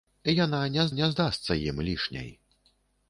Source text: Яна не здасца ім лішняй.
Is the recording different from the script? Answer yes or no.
yes